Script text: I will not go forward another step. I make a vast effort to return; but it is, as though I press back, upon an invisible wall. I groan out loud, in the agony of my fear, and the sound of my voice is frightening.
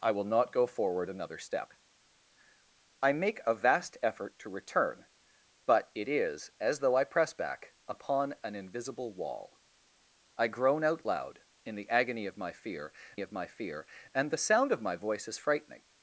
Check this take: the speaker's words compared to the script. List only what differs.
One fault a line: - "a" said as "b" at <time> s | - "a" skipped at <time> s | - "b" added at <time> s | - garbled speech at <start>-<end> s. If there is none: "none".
- "of my fear" added at 13.2 s